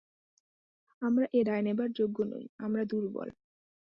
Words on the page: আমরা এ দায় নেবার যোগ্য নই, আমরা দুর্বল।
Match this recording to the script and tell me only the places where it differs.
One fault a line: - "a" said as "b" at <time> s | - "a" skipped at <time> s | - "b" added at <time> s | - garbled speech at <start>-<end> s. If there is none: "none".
none